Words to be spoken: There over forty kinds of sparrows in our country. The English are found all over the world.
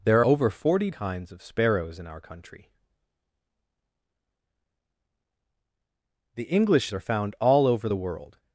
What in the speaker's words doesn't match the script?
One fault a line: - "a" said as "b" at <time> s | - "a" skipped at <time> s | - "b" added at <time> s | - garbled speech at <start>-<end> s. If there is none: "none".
none